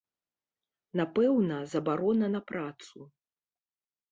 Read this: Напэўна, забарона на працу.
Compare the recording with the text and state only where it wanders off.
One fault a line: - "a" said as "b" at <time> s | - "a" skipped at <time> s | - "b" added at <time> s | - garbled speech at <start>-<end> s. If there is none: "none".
none